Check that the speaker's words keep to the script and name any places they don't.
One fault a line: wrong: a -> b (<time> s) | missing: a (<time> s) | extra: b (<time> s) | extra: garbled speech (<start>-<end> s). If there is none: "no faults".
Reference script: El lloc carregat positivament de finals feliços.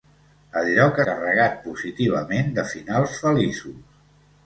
no faults